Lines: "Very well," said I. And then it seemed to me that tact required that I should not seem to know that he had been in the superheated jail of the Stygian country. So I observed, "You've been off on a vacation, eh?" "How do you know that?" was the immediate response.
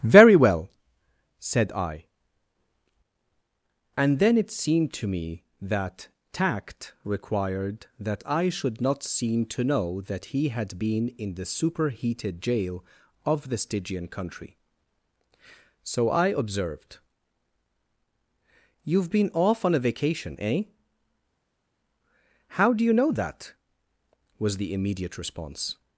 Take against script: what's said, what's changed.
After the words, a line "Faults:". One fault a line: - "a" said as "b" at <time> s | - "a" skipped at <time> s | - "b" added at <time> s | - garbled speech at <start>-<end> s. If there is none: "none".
"Very well," said I. And then it seemed to me that tact required that I should not seem to know that he had been in the superheated jail of the Stygian country. So I observed, "You've been off on a vacation, eh?" "How do you know that?" was the immediate response.
Faults:
none